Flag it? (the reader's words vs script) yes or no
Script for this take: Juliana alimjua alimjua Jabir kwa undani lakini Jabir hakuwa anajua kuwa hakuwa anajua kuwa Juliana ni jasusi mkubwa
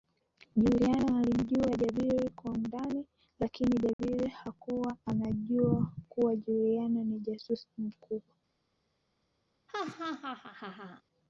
yes